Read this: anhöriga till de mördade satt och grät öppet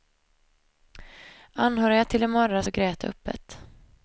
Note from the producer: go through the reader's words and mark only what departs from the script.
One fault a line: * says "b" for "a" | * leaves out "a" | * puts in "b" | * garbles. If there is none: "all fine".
* leaves out "satt"